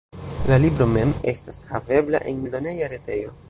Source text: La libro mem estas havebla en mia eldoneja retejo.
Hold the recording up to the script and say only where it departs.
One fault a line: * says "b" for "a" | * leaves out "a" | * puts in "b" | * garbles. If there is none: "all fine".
* leaves out "mia"